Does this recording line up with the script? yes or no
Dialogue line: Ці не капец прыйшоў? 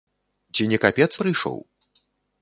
yes